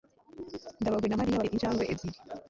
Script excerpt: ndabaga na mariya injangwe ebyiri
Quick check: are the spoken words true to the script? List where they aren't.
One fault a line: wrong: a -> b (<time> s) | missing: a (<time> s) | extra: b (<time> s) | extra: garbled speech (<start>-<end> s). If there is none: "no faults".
no faults